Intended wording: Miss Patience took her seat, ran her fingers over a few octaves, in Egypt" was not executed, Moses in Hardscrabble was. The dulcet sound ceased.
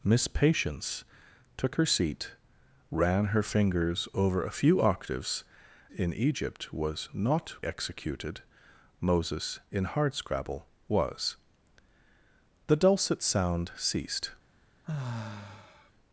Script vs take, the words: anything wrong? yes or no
no